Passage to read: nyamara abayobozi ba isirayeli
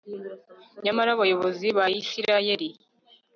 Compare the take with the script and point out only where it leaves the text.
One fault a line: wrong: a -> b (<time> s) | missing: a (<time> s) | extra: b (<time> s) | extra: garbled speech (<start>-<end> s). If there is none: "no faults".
no faults